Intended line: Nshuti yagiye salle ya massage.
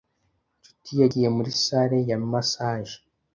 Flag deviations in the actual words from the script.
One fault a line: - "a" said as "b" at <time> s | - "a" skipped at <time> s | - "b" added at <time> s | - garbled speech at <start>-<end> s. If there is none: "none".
- "muri" added at 1.4 s